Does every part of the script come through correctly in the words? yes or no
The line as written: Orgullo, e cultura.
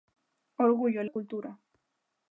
yes